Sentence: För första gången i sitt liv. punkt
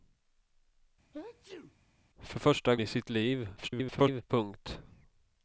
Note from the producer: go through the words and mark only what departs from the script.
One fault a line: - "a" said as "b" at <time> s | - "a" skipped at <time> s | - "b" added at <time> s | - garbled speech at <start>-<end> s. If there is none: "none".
- "gången" skipped at 2.8 s
- garbled speech at 3.6-4.2 s